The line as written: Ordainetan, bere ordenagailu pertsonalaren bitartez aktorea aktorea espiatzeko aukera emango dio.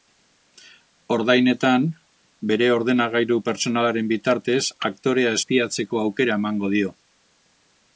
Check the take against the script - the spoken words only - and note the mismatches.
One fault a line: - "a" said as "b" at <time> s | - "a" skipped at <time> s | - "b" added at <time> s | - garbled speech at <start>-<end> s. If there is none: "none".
- "aktorea" skipped at 5.4 s